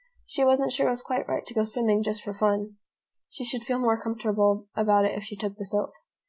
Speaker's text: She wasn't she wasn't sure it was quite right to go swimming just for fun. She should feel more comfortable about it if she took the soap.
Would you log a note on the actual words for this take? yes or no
yes